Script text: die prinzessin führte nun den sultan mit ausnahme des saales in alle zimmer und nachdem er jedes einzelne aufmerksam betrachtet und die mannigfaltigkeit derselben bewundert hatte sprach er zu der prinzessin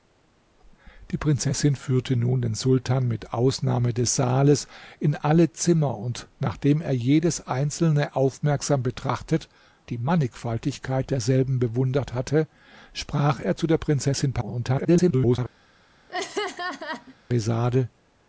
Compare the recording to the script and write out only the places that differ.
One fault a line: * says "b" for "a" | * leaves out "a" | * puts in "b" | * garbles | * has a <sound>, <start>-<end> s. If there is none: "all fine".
* leaves out "und"
* garbles
* has a laugh, 16.1-17.2 s